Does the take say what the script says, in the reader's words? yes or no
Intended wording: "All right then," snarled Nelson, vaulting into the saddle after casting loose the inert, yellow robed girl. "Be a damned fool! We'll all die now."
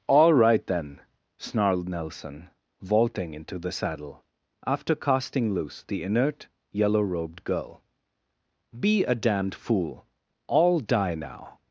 no